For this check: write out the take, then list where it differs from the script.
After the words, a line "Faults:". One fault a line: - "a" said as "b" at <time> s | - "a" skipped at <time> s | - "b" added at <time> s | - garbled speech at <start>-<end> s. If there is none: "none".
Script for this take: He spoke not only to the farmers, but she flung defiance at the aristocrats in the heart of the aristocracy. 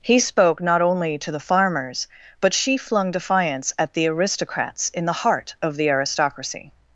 He spoke not only to the farmers, but she flung defiance at the aristocrats in the heart of the aristocracy.
Faults:
none